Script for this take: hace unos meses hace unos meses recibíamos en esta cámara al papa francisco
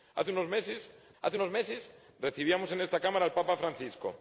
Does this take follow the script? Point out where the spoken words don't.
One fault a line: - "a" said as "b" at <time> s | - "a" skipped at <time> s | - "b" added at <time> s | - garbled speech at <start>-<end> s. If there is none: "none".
none